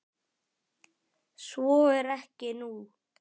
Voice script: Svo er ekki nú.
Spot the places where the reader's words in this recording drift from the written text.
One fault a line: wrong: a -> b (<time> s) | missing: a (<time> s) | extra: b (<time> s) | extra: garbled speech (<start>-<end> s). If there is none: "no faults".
no faults